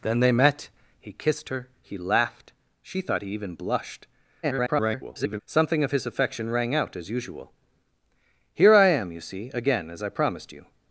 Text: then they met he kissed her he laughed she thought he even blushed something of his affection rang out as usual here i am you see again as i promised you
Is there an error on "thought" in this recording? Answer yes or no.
no